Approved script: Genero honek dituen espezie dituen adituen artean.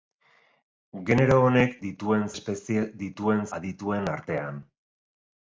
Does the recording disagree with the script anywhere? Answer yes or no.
no